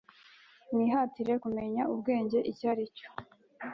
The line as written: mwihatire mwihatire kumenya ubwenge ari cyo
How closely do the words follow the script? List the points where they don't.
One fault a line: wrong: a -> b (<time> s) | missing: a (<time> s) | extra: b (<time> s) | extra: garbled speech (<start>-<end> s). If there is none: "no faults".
missing: mwihatire (1.3 s)
extra: icyo (2.5 s)